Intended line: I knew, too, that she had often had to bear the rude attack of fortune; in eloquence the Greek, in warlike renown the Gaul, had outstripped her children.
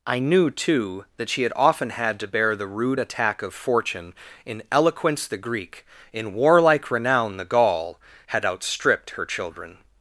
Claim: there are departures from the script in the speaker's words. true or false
false